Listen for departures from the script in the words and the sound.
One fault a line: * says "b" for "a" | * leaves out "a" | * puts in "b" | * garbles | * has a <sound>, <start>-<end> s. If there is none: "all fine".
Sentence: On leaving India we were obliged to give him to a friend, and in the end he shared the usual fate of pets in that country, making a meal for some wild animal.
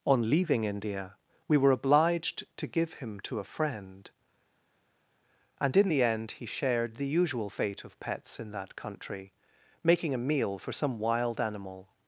all fine